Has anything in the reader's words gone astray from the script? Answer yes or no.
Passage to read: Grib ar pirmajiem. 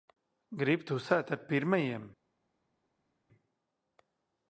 yes